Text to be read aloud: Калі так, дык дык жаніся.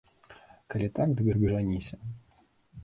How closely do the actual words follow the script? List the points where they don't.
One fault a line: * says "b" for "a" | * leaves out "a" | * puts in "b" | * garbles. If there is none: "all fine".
all fine